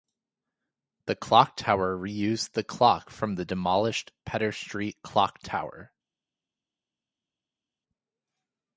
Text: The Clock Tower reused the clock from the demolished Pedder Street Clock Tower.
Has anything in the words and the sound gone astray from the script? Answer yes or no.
no